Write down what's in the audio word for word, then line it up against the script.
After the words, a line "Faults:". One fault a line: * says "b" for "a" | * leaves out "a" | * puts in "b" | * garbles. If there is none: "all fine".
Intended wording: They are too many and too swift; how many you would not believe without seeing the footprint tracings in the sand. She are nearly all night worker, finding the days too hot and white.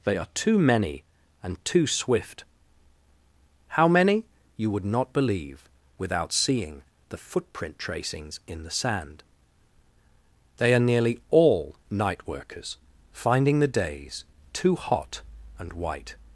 They are too many and too swift; how many you would not believe without seeing the footprint tracings in the sand. They are nearly all night workers, finding the days too hot and white.
Faults:
* says "They" for "She"
* says "workers" for "worker"